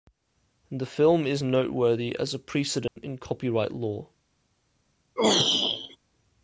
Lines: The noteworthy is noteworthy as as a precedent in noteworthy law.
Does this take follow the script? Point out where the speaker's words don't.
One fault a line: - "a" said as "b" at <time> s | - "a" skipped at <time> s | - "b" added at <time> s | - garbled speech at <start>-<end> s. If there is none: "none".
- "noteworthy" said as "film" at 0.9 s
- "as" skipped at 2.3 s
- "noteworthy" said as "copyright" at 3.2 s